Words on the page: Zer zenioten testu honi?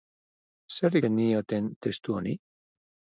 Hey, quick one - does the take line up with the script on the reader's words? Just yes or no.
yes